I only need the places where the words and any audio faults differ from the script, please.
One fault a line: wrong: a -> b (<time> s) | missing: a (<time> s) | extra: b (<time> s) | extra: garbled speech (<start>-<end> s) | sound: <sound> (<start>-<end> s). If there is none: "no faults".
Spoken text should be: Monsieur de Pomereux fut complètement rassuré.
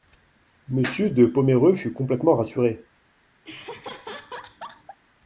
sound: laugh (3.4-5.0 s)